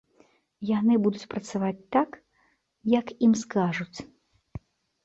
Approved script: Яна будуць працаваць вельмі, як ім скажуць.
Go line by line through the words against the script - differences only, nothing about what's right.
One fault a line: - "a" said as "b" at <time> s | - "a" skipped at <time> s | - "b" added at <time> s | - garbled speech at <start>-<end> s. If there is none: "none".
- "Яна" said as "Яны" at 0.7 s
- "вельмі" said as "так" at 2.0 s